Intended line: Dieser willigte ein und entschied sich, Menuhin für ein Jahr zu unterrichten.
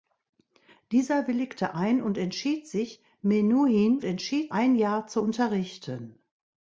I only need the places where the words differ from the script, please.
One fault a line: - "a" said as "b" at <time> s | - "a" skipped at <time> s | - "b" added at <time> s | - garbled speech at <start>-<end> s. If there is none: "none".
- "für" said as "entschied" at 4.0 s